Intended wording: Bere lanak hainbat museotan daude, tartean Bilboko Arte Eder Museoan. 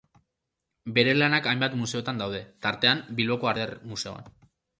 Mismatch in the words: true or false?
true